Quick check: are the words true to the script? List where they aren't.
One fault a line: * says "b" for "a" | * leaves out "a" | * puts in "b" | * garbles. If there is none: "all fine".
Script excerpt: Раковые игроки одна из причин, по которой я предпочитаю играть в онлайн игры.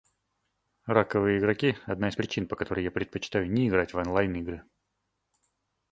* puts in "не"